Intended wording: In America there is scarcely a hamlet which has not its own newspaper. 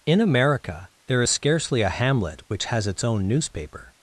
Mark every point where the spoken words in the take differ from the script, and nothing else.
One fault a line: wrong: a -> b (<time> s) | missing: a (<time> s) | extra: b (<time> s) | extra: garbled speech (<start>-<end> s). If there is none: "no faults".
missing: not (2.9 s)